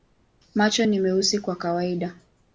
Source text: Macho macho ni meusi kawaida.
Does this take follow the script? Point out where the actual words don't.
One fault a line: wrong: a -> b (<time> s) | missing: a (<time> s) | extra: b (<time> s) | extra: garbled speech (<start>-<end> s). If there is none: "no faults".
missing: macho (0.8 s)
extra: kwa (1.4 s)